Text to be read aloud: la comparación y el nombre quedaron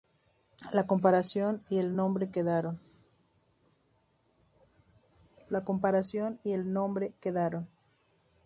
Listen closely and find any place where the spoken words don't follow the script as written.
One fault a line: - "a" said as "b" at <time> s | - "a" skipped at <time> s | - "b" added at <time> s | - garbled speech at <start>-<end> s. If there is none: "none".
none